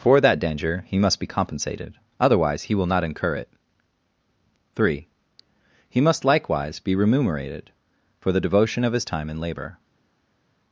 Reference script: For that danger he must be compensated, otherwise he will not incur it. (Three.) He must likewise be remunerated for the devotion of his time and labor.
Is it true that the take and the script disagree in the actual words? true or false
false